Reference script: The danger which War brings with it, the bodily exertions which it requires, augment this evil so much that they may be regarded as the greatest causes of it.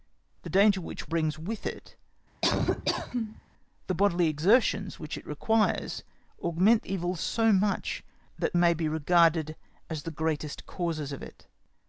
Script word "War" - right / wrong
wrong